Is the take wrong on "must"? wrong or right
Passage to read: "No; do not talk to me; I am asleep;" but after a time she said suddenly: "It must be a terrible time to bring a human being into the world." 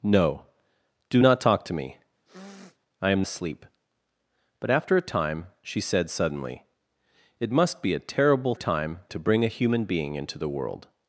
right